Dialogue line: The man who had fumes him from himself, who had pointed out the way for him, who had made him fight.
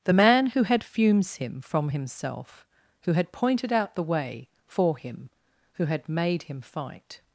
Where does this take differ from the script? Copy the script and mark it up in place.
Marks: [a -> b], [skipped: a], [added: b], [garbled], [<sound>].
The man who had fumes him from himself, who had pointed out the way for him, who had made him fight.